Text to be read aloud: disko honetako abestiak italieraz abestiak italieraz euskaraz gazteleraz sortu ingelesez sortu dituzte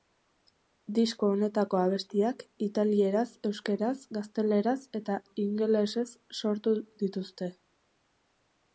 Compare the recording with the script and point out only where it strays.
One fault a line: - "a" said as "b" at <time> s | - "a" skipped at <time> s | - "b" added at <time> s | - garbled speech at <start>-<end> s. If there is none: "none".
- "abestiak italieraz" skipped at 3.3 s
- "sortu" said as "eta" at 5.0 s